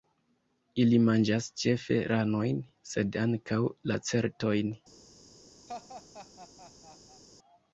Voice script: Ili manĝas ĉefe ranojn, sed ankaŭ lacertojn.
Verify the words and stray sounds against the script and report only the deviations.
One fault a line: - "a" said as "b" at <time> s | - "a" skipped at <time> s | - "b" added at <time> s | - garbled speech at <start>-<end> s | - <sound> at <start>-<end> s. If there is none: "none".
- laugh at 5.7-7.2 s